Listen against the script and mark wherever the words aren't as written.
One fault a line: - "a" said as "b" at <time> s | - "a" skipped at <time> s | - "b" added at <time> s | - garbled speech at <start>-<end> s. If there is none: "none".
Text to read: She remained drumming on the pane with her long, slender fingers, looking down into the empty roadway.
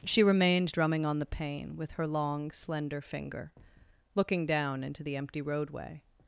- "fingers" said as "finger" at 3.0 s